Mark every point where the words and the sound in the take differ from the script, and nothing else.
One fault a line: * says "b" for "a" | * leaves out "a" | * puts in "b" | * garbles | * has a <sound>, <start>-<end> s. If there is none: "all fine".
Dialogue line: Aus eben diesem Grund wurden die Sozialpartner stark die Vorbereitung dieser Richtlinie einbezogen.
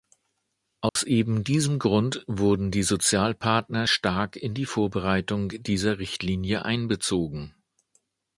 * has a dropout, 0.9-1.0 s
* puts in "in"